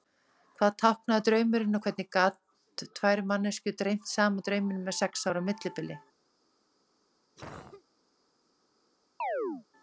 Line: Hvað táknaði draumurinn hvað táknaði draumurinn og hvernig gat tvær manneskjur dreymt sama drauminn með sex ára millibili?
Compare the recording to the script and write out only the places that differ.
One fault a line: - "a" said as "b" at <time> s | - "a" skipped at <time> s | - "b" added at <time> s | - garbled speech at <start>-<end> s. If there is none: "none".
- "hvað táknaði draumurinn" skipped at 1.8 s